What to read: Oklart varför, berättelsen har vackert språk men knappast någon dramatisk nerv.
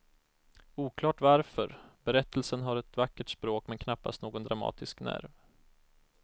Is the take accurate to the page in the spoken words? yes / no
no